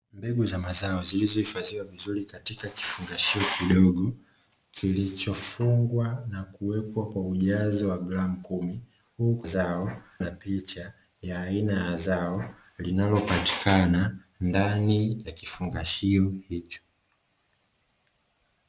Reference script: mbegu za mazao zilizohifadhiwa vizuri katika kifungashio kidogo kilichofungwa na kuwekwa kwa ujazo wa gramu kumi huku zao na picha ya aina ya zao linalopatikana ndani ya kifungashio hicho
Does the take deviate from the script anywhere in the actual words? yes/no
no